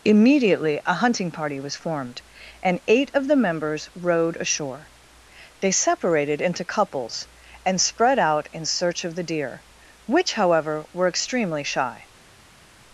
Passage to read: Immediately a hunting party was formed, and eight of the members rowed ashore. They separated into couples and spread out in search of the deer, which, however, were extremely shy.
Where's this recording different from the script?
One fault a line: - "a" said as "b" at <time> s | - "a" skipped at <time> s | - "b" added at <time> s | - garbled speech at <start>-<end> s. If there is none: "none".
none